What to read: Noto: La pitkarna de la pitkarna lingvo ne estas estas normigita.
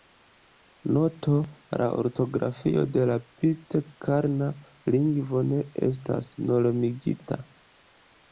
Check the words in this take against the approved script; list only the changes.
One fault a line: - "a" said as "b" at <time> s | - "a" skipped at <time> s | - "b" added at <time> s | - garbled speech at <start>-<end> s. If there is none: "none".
- "pitkarna" said as "ortografio" at 2.0 s
- "estas" skipped at 6.3 s